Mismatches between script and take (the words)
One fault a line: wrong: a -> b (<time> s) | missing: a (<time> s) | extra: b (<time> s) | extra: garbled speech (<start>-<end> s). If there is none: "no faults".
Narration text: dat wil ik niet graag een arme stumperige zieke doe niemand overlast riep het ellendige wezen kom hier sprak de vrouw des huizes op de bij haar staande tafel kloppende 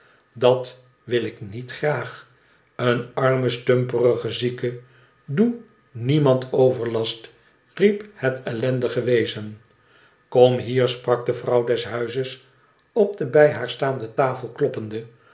no faults